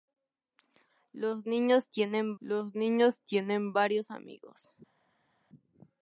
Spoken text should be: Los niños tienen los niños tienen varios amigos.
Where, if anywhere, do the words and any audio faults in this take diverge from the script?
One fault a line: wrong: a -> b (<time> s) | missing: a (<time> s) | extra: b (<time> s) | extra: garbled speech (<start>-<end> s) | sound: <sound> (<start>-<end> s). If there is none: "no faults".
no faults